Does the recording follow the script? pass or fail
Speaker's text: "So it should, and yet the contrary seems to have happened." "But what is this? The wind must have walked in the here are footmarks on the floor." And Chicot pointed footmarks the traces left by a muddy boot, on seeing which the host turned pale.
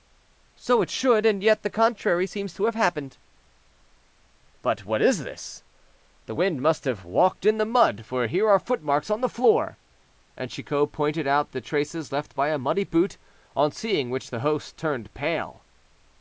fail